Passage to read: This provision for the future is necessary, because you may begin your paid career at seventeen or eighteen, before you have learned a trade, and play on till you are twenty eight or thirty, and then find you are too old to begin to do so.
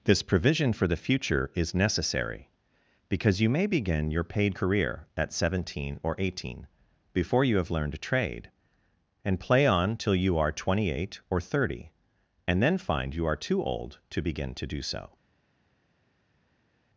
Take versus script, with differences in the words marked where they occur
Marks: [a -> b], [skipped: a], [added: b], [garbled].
This provision for the future is necessary, because you may begin your paid career at seventeen or eighteen, before you have learned a trade, and play on till you are twenty eight or thirty, and then find you are too old to begin to do so.